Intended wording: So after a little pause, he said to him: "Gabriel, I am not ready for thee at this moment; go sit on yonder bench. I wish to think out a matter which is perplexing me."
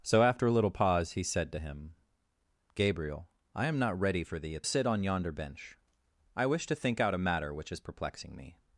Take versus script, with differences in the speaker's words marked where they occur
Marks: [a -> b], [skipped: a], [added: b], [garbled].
So after a little pause, he said to him: "Gabriel, I am not ready for thee at [skipped: this moment; go] sit on yonder bench. I wish to think out a matter which is perplexing me."